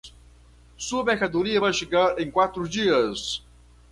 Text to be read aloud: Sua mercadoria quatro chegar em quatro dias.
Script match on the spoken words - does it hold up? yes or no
no